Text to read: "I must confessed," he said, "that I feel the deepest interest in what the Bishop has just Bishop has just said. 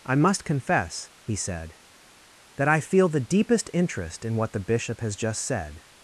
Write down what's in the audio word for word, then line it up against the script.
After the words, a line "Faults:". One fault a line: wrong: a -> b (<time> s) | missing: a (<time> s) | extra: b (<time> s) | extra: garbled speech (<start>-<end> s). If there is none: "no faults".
"I must confess," he said, "that I feel the deepest interest in what the Bishop has just said.
Faults:
wrong: confessed -> confess (0.5 s)
missing: Bishop has just (5.4 s)